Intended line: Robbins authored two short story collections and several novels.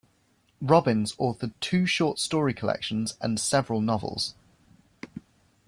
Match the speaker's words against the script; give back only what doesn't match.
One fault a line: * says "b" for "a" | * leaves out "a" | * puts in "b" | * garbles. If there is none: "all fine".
all fine